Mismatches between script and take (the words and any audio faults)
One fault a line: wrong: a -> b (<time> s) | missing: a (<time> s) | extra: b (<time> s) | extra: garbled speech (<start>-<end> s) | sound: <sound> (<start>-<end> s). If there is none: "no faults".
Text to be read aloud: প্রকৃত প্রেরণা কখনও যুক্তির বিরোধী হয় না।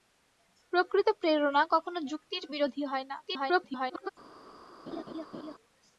extra: garbled speech (3.2-4.1 s)
sound: laugh (4.9-5.5 s)